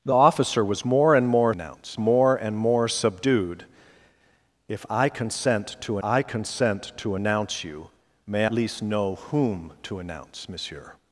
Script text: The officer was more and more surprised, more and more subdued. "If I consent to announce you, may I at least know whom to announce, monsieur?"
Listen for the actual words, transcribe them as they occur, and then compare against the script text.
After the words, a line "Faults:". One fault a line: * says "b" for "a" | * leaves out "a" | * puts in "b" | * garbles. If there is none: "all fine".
The officer was more and more announce, more and more subdued. "If I consent to I consent to announce you, may least know whom to announce, monsieur?"
Faults:
* says "announce" for "surprised"
* puts in "I consent to"
* leaves out "I at"